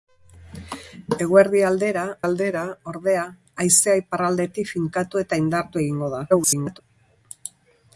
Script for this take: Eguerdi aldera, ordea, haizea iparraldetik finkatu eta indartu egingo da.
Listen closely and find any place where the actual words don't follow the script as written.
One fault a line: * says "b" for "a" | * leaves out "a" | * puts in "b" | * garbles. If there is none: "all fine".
* puts in "aldera"
* garbles